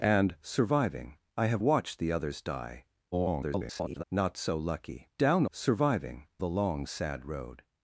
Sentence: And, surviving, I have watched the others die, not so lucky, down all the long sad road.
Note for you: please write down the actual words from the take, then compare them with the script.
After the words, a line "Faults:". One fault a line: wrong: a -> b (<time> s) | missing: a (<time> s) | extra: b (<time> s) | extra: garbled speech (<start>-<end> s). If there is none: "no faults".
And, surviving, I have watched the others die, [garbled] not so lucky, down surviving the long sad road.
Faults:
extra: garbled speech (3.1-4.0 s)
wrong: all -> surviving (5.5 s)